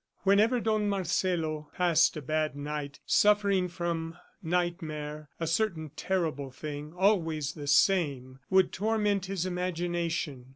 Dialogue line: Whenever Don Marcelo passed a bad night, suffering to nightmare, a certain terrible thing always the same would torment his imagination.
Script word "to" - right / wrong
wrong